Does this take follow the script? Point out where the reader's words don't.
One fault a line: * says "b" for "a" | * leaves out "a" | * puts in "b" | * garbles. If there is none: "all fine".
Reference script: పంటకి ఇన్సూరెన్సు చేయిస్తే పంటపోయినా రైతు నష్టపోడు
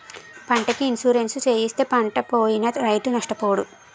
all fine